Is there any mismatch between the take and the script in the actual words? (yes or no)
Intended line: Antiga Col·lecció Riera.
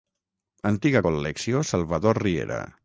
yes